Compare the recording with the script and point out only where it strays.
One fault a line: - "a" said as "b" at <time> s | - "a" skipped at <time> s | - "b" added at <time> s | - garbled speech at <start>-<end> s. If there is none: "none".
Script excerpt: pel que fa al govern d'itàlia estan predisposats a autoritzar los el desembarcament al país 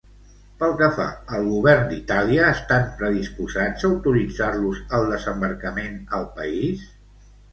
none